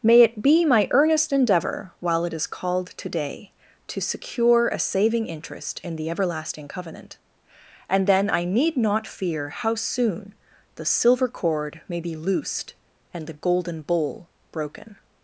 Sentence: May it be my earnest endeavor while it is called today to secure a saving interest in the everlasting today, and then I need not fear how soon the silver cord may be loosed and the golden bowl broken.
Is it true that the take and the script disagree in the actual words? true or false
true